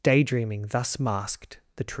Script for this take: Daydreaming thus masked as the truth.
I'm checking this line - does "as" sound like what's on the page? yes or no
no